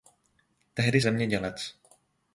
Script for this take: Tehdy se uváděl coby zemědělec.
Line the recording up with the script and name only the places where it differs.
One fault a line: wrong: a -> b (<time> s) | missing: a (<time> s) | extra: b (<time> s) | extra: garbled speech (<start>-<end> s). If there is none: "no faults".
missing: se uváděl coby (1.0 s)